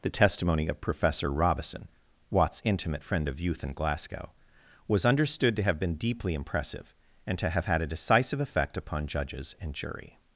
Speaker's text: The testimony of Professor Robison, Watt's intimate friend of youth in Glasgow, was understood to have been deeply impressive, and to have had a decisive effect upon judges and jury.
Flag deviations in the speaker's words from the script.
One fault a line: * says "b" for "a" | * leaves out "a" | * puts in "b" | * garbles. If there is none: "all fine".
all fine